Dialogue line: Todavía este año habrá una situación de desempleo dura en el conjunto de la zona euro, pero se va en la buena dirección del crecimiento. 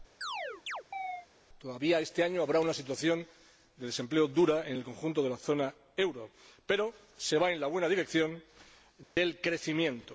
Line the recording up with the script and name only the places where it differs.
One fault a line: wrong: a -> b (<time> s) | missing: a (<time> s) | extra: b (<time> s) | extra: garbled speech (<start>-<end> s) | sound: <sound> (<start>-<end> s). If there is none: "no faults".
sound: chirp (0.2-1.3 s)
sound: dropout (9.0-9.2 s)